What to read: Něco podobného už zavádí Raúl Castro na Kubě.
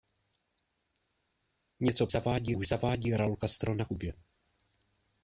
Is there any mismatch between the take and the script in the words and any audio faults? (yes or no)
yes